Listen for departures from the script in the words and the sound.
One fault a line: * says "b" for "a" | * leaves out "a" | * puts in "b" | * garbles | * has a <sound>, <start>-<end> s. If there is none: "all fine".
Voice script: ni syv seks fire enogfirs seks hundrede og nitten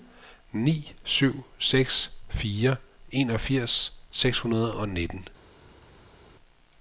all fine